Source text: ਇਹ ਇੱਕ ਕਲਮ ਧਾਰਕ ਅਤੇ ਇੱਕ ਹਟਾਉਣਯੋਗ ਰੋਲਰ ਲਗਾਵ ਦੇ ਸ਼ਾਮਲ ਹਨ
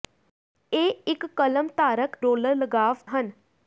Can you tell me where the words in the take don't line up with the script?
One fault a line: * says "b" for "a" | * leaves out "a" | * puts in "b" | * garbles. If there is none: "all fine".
* leaves out "ਅਤੇ ਇੱਕ ਹਟਾਉਣਯੋਗ"
* leaves out "ਦੇ ਸ਼ਾਮਲ"